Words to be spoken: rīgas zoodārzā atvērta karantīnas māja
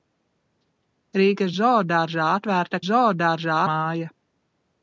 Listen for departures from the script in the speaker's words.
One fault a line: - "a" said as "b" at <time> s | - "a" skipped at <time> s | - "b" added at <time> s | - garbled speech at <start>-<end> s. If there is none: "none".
- "karantīnas" said as "zoodārzā" at 2.9 s